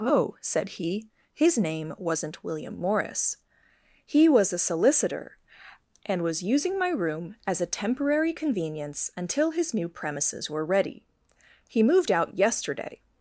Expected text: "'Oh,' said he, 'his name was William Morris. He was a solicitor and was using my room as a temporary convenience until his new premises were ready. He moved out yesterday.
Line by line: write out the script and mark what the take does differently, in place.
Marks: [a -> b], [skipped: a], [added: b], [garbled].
"'Oh,' said he, 'his name [was -> wasn't] William Morris. He was a solicitor and was using my room as a temporary convenience until his new premises were ready. He moved out yesterday.